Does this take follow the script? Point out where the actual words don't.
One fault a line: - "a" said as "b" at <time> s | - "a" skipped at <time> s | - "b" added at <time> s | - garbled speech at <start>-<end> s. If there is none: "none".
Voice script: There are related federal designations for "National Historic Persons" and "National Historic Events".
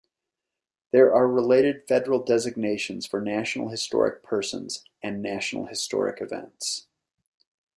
none